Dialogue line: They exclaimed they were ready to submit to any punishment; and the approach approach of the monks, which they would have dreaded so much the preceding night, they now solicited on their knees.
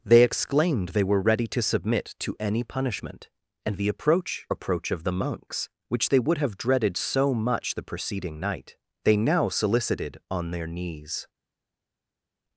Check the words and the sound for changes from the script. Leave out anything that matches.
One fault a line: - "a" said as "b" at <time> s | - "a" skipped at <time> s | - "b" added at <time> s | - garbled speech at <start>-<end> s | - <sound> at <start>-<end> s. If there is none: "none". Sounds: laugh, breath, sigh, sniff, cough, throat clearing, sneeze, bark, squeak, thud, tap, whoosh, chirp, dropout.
none